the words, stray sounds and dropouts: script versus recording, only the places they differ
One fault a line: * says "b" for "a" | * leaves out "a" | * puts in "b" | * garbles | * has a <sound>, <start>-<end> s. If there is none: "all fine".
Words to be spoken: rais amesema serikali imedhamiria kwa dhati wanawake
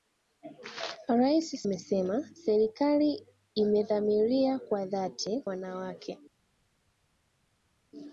all fine